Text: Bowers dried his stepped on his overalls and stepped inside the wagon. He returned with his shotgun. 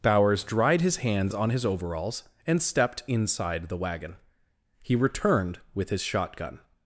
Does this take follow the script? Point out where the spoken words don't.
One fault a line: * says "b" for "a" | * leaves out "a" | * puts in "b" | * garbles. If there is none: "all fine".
* says "hands" for "stepped"